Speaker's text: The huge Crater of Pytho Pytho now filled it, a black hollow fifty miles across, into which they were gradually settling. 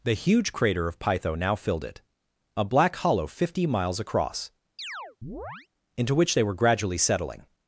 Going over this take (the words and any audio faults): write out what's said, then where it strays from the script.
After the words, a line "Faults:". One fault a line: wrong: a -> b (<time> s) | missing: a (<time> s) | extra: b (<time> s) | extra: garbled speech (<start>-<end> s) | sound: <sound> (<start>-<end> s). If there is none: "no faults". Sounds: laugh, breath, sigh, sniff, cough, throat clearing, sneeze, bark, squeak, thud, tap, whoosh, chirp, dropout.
The huge Crater of Pytho now filled it, a black hollow fifty miles across, into which they were gradually settling.
Faults:
missing: Pytho (1.4 s)
sound: chirp (4.8-5.7 s)